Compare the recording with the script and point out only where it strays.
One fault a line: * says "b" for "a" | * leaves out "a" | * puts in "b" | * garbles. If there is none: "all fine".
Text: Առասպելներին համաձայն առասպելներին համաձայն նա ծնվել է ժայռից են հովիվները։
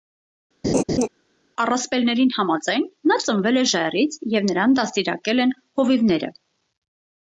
* leaves out "առասպելներին համաձայն"
* puts in "և նրան դաստիարակել"